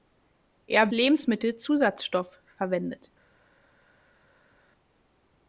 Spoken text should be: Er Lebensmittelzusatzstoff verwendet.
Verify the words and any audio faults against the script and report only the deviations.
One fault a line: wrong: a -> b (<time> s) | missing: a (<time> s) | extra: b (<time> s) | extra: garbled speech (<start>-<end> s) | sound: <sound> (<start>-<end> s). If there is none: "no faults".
no faults